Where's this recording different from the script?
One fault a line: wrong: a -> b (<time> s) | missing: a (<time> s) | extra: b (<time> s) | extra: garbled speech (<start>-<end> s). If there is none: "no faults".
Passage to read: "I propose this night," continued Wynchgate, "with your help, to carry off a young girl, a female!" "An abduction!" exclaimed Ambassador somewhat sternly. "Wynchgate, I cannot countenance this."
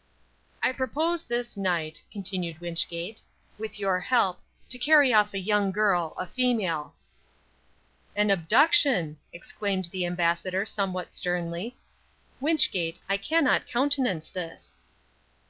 extra: the (9.9 s)